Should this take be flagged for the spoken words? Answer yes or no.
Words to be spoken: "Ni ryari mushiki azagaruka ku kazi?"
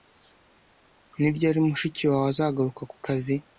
yes